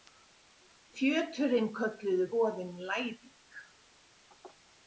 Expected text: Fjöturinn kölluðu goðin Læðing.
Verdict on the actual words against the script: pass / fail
pass